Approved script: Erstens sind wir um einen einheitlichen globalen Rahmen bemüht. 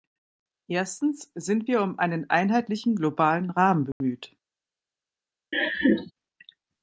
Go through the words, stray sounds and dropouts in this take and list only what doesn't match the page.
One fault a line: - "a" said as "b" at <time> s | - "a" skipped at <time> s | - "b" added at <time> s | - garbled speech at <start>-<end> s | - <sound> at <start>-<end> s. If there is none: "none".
- dropout at 3.9-4.0 s
- laugh at 5.5-6.1 s